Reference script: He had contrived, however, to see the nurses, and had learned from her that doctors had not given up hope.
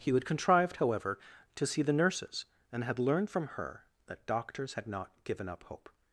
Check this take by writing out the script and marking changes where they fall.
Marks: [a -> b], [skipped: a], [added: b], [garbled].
He had contrived, however, to see the nurses, and had learned from her that doctors had not given up hope.